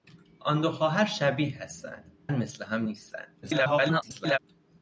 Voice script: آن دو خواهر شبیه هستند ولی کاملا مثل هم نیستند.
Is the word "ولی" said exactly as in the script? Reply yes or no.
no